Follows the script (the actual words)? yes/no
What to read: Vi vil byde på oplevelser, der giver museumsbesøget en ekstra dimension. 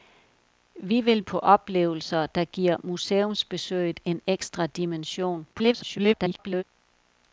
no